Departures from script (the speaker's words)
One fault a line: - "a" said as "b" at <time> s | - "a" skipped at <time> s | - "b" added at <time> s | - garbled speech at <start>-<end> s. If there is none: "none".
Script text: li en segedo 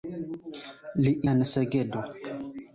none